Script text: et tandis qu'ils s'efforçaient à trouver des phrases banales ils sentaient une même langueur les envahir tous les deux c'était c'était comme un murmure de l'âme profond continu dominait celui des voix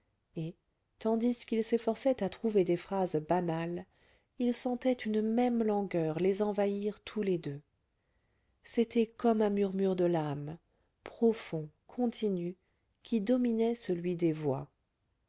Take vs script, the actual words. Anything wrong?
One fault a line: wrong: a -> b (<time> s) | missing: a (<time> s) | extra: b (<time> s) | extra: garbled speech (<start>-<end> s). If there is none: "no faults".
missing: c'était (9.1 s)
extra: qui (13.0 s)